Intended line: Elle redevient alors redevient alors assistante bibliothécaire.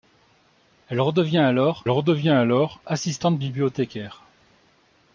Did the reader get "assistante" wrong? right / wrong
right